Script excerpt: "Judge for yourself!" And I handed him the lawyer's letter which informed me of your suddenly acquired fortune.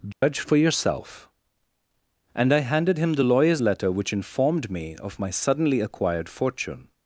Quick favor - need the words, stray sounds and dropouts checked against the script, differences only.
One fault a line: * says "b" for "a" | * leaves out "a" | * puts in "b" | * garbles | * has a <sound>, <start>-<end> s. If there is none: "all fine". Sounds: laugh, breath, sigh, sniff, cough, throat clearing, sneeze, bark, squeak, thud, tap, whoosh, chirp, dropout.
* has a dropout, 0.1-0.2 s
* says "my" for "your"